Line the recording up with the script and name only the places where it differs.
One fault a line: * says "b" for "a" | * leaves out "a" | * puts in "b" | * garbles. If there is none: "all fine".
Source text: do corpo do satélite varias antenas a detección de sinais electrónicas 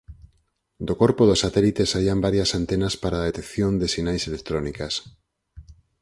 * puts in "saían"
* puts in "para"